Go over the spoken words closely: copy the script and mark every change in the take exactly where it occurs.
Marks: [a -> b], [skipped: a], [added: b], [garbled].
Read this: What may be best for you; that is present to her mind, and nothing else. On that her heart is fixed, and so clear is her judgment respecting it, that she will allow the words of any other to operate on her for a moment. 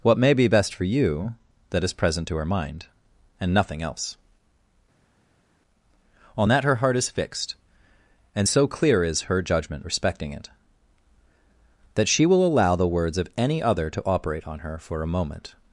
What may be best for you; that is present to her mind, and nothing else. On that her heart is fixed, and so clear is her judgment respecting it, that she will allow the words of any other to operate on her for a moment.